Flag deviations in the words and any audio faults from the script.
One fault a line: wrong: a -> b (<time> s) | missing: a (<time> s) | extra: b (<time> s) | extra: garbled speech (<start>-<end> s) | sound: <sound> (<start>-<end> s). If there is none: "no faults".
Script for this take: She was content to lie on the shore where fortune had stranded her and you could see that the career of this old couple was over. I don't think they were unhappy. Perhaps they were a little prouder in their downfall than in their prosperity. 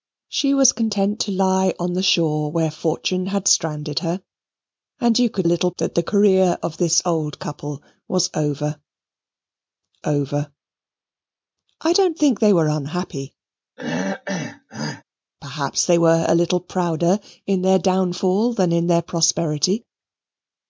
wrong: see -> little (5.4 s)
extra: over (10.1 s)
sound: throat clearing (13.8-15.0 s)